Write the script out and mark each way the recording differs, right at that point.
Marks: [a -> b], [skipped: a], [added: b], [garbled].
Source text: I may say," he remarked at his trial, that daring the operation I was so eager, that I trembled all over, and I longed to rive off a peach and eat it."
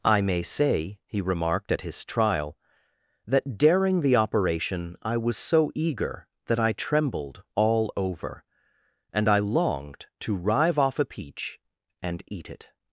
I may say," he remarked at his trial, that daring the operation I was so eager, that I trembled all over, and I longed to rive off a peach and eat it."